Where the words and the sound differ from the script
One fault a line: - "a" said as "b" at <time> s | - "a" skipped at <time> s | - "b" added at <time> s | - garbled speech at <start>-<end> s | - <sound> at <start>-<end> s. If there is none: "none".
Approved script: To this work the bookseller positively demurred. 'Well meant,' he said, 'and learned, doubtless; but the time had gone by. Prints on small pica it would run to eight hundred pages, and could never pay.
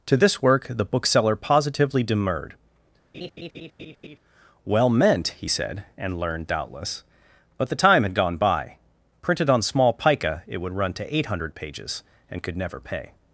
- laugh at 3.1-4.2 s
- "Prints" said as "Printed" at 9.2 s